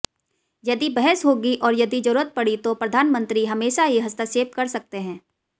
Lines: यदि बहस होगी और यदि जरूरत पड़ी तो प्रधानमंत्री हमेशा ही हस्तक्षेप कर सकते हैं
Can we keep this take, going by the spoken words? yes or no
yes